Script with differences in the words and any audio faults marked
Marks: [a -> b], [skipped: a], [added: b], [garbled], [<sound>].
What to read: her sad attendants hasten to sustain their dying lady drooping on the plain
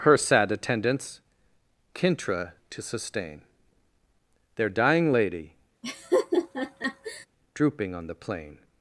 her sad attendants [hasten -> kintra] to sustain their dying lady [laugh] drooping on the plain